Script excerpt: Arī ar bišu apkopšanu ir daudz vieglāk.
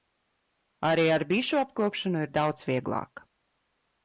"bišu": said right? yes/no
yes